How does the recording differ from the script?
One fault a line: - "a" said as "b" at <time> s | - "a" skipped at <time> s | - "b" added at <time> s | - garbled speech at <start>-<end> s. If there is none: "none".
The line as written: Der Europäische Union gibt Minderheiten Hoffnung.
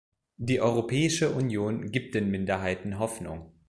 - "Der" said as "Die" at 0.4 s
- "den" added at 2.1 s